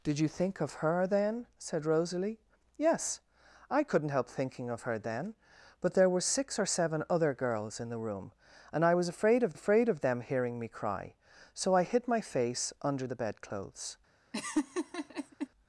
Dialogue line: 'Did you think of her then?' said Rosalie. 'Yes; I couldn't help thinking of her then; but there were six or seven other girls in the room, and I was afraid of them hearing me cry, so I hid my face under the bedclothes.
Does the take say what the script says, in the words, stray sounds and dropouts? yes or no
no